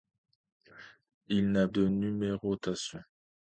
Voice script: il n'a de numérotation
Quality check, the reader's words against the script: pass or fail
pass